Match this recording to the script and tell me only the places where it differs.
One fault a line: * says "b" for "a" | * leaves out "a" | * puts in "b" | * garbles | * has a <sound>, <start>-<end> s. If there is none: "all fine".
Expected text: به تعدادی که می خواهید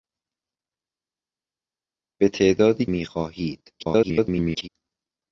* leaves out "که"
* garbles